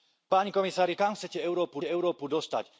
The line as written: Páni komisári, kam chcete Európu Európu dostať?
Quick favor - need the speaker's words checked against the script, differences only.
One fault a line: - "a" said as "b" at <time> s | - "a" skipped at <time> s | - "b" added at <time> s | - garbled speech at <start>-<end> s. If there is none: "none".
none